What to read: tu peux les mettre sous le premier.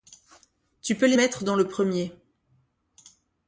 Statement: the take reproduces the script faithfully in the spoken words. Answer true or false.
false